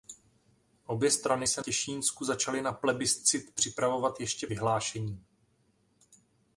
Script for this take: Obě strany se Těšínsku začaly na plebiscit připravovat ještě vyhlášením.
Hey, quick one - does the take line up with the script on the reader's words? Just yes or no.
yes